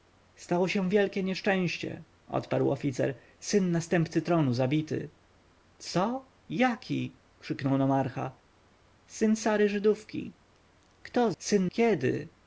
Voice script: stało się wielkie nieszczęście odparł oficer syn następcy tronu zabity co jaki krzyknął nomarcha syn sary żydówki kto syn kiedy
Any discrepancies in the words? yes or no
no